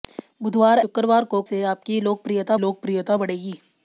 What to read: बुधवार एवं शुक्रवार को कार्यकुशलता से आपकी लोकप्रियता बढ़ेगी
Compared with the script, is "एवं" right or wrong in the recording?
wrong